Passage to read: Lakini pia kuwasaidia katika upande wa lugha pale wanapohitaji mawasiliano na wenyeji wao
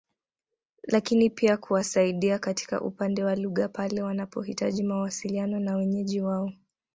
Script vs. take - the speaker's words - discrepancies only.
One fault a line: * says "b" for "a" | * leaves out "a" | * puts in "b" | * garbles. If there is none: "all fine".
all fine